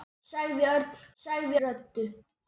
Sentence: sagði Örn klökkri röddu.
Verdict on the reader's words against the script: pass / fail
fail